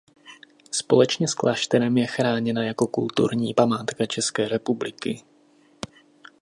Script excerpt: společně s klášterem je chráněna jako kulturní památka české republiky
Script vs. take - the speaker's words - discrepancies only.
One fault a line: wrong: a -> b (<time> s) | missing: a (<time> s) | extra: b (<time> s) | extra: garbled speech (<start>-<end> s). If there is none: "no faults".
no faults